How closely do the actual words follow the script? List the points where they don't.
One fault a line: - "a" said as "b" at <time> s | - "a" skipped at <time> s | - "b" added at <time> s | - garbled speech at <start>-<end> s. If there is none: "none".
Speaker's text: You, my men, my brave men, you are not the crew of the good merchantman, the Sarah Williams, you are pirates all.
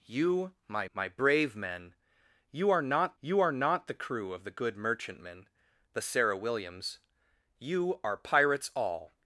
- "men" skipped at 0.9 s
- "you are not" added at 3.2 s